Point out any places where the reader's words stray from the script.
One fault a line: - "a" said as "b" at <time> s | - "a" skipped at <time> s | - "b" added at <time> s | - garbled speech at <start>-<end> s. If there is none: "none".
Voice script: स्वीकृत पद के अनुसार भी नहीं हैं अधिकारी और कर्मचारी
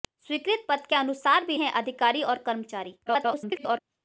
- "नहीं" skipped at 1.6 s
- garbled speech at 3.1-3.8 s